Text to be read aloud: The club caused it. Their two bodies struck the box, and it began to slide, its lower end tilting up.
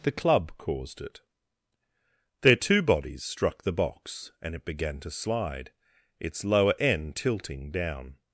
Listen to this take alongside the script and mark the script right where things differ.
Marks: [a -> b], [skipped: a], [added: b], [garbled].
The club caused it. Their two bodies struck the box, and it began to slide, its lower end tilting [up. -> down]